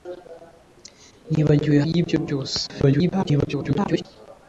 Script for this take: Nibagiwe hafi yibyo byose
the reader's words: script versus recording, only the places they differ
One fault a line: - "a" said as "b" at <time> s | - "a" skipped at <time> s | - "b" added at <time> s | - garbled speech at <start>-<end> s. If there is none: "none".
- "hafi" skipped at 1.8 s
- garbled speech at 2.7-4.1 s